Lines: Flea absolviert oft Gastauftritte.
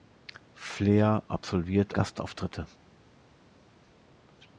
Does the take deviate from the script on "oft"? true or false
true